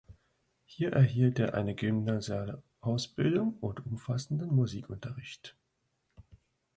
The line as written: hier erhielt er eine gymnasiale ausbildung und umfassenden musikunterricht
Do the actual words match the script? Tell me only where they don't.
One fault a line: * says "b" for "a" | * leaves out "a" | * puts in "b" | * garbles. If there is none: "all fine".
all fine